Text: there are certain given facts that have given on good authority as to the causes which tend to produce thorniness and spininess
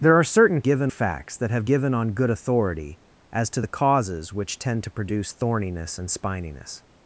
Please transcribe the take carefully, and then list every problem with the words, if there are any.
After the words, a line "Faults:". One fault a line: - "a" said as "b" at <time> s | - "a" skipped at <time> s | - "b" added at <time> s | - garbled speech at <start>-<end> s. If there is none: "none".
there are certain given facts that have given on good authority as to the causes which tend to produce thorniness and spininess
Faults:
none